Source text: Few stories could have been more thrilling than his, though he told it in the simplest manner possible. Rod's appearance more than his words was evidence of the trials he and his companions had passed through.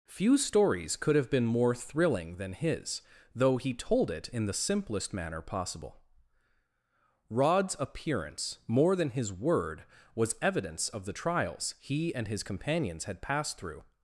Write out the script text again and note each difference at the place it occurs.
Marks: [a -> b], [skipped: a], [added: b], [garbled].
Few stories could have been more thrilling than his, though he told it in the simplest manner possible. Rod's appearance more than his [words -> word] was evidence of the trials he and his companions had passed through.